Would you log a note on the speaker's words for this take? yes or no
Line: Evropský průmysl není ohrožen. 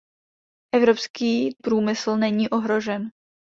no